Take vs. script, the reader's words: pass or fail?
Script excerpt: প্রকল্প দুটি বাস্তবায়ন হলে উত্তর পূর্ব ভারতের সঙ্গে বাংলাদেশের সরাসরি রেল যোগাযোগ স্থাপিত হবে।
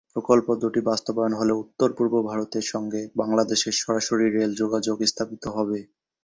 pass